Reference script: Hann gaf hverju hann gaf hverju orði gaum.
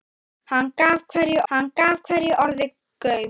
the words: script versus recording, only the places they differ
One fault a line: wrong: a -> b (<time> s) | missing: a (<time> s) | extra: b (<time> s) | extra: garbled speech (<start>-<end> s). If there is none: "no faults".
no faults